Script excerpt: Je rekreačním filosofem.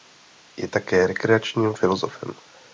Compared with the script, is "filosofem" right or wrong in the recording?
right